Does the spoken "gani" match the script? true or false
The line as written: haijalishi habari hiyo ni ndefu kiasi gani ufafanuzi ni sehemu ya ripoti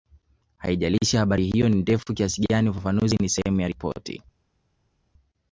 true